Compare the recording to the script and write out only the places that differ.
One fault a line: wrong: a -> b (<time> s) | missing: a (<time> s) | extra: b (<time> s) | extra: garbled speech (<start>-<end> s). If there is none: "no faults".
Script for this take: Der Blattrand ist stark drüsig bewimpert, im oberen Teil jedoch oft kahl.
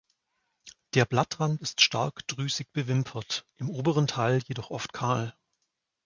no faults